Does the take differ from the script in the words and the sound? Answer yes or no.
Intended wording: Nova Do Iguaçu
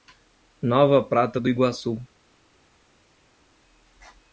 yes